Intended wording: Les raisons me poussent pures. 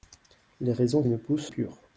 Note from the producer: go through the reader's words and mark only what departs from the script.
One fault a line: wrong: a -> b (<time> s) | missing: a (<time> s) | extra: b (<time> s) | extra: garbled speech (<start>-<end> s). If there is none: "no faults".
no faults